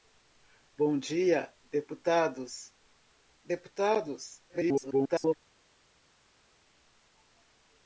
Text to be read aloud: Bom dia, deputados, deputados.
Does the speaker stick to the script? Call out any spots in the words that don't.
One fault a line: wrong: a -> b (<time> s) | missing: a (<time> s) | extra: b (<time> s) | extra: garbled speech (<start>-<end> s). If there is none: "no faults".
extra: garbled speech (4.5-5.4 s)